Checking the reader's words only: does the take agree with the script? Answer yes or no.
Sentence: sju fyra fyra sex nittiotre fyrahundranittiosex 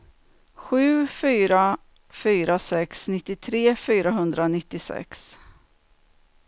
yes